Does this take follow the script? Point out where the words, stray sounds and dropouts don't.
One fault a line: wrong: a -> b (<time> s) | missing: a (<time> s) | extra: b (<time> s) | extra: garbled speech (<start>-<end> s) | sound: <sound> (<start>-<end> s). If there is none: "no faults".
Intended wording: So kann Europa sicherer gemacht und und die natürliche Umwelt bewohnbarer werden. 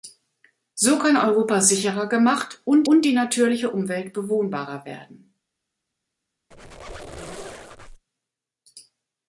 sound: squeak (6.5-8.0 s)